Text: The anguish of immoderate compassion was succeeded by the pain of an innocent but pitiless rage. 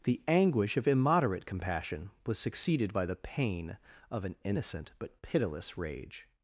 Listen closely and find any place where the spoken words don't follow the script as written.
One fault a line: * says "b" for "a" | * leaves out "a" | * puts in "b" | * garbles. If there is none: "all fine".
all fine